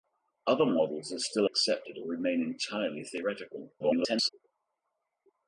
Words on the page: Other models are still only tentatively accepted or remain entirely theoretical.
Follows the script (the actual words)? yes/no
no